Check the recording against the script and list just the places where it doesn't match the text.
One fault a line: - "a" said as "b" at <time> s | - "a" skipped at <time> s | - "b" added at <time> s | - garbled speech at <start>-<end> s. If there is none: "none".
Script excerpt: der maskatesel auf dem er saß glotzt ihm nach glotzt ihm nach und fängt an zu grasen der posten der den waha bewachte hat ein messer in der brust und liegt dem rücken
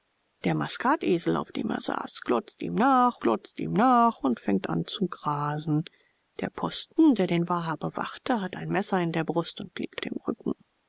none